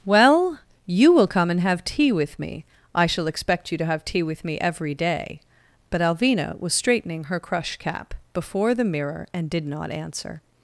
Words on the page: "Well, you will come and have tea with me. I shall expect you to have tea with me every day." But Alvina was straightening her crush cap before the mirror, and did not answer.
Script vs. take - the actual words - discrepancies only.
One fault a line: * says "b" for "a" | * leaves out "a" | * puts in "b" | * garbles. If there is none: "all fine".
all fine